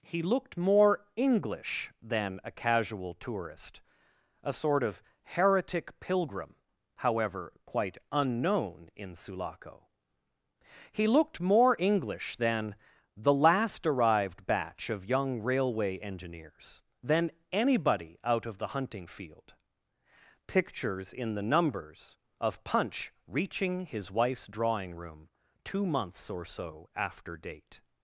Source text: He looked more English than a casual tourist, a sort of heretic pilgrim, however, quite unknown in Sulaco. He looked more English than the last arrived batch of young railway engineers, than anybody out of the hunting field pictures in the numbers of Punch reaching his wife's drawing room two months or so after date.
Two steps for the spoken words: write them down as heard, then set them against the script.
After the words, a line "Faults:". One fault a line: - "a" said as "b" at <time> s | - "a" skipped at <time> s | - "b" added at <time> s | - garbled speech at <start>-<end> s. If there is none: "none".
He looked more English than a casual tourist, a sort of heretic pilgrim, however, quite unknown in Sulaco. He looked more English than the last arrived batch of young railway engineers, than anybody out of the hunting field pictures in the numbers of Punch reaching his wife's drawing room two months or so after date.
Faults:
none